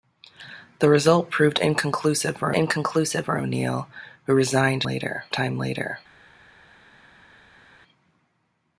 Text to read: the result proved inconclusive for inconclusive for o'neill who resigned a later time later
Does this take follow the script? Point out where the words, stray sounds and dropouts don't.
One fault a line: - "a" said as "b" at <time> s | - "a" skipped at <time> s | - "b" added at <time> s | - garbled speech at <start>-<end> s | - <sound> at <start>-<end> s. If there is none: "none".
none